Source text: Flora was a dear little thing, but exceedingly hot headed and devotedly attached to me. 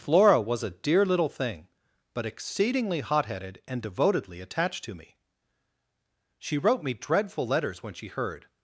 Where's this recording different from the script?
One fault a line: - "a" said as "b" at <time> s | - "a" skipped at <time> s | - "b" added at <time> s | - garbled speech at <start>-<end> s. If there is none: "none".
- "She wrote me dreadful letters when she heard" added at 6.4 s